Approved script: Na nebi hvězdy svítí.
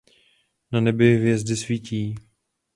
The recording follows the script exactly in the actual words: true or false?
true